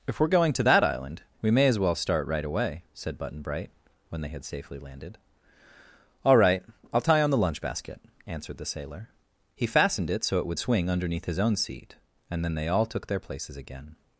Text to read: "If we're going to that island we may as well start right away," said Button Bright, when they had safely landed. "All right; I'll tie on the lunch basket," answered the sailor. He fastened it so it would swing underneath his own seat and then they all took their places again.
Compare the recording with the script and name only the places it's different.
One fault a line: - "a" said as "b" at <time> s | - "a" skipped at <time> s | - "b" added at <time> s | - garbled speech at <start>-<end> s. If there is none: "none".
none